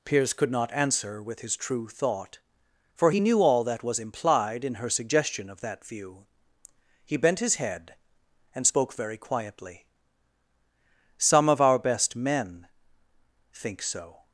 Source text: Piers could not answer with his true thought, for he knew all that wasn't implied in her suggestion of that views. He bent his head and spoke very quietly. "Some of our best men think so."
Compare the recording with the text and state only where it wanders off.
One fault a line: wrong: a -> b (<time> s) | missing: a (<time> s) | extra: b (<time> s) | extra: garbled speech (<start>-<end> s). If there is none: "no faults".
wrong: wasn't -> was (3.8 s)
wrong: views -> view (5.9 s)